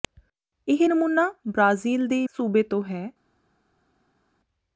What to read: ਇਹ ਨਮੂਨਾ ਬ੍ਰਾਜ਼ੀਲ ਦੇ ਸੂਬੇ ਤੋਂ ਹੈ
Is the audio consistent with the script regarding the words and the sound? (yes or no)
yes